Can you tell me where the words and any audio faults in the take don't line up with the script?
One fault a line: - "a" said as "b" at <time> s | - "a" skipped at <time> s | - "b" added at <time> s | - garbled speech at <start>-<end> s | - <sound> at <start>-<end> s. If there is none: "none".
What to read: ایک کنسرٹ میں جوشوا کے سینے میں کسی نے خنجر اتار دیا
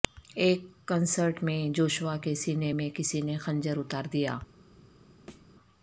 - thud at 5.3-5.5 s